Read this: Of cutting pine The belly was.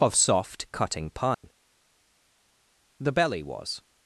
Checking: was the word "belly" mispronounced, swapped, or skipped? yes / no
no